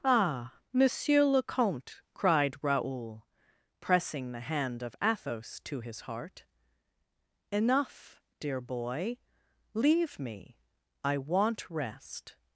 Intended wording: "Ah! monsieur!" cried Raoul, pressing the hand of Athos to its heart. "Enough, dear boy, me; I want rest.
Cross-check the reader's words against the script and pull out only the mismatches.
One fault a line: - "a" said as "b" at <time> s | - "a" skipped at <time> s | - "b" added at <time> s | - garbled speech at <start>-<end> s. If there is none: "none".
- "le comte" added at 1.2 s
- "its" said as "his" at 5.8 s
- "leave" added at 9.8 s